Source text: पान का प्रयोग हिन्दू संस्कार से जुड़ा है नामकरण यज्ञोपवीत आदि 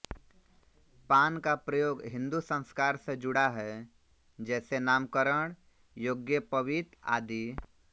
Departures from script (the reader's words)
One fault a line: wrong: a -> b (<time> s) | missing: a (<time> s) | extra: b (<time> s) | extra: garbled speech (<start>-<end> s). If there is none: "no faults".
extra: जैसे (4.4 s)